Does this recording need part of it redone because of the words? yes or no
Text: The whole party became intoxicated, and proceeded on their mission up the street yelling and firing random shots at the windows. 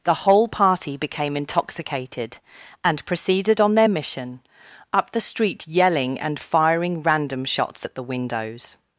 no